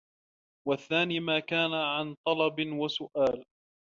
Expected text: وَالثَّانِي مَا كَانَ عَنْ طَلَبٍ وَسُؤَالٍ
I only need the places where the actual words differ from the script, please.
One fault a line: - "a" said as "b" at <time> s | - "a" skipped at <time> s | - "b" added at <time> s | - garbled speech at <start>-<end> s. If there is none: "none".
none